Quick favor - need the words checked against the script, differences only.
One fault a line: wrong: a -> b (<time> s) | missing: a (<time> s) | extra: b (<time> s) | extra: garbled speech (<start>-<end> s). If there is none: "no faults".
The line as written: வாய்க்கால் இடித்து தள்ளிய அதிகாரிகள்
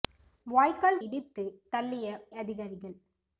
no faults